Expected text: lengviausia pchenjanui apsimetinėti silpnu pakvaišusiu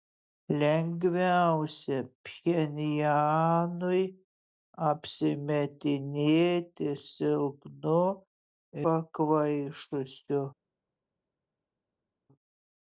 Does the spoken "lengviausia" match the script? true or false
true